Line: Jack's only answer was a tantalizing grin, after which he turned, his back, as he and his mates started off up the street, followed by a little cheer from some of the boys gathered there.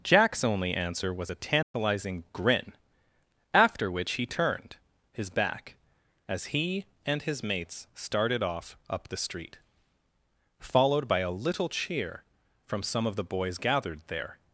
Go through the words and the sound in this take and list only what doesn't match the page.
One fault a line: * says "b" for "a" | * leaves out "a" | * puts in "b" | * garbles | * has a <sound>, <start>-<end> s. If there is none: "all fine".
* has a dropout, 1.6-1.7 s